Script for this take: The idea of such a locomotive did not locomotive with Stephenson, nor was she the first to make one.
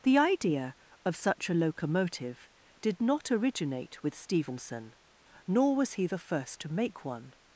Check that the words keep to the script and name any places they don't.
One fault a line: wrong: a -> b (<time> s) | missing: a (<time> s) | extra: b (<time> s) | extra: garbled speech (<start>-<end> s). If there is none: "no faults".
wrong: locomotive -> originate (3.3 s)
wrong: she -> he (5.9 s)